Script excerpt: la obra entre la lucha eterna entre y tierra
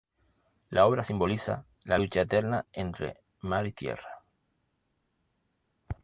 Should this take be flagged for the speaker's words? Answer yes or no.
yes